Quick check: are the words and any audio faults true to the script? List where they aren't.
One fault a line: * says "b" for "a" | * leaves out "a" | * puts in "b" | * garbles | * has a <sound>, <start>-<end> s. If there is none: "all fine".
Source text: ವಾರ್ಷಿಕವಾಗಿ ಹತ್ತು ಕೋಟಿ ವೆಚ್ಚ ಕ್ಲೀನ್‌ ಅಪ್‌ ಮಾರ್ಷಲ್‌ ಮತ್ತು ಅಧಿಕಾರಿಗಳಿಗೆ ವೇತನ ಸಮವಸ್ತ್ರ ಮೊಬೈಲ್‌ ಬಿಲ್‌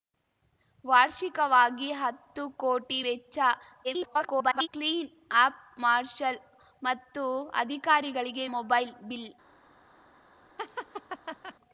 * garbles
* leaves out "ವೇತನ ಸಮವಸ್ತ್ರ"
* has a laugh, 10.6-11.6 s